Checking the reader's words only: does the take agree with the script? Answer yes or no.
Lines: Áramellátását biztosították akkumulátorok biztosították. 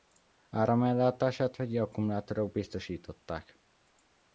no